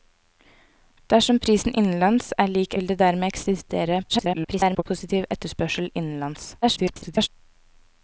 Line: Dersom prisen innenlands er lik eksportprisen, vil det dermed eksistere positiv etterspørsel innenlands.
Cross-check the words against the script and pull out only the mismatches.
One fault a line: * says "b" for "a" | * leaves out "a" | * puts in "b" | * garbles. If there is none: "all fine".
* leaves out "eksportprisen"
* garbles
* garbles